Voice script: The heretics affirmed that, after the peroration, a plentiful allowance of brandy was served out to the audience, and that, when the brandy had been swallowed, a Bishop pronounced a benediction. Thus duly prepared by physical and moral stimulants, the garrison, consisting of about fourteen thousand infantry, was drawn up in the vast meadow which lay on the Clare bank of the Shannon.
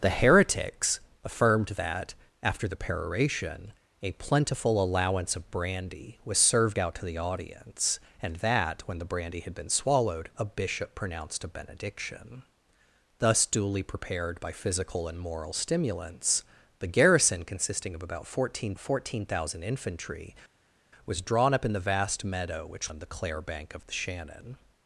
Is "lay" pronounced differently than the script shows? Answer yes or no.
yes